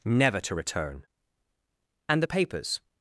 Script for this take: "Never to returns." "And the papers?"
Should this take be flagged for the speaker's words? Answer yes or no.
yes